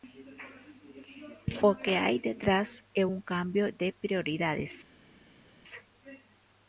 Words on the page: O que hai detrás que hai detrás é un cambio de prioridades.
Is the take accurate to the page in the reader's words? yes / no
no